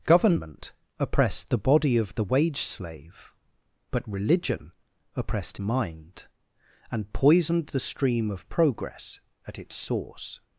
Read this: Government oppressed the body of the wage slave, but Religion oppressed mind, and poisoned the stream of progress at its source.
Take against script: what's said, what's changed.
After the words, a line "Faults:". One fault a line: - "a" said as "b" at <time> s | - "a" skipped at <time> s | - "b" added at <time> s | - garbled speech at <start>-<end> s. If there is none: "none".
Government oppressed the body of the wage slave, but Religion oppressed mind, and poisoned the stream of progress at its source.
Faults:
none